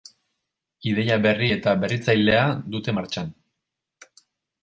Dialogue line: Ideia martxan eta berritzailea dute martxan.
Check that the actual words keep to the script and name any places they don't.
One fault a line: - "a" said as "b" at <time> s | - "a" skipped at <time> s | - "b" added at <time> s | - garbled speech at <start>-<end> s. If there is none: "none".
- "martxan" said as "berri" at 1.2 s